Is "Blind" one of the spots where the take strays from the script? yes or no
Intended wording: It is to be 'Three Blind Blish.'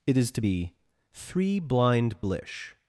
no